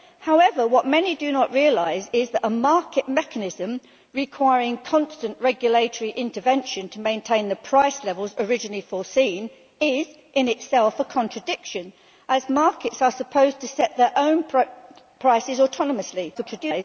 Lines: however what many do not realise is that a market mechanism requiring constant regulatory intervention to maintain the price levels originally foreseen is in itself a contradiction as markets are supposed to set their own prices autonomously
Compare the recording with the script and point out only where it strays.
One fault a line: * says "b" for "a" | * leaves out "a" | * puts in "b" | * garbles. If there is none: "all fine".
* garbles